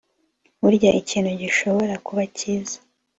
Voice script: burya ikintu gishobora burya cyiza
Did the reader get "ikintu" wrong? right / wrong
right